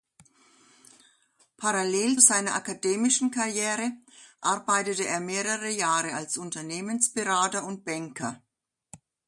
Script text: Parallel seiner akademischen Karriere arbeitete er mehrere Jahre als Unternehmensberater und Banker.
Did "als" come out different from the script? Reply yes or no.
no